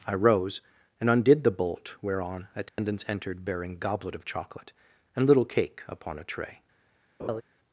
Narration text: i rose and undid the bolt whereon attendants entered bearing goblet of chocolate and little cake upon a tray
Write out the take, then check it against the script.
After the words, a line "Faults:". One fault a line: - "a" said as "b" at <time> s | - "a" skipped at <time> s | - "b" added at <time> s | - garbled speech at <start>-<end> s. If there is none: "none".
i rose and undid the bolt whereon attendants entered bearing goblet of chocolate and little cake upon a tray
Faults:
none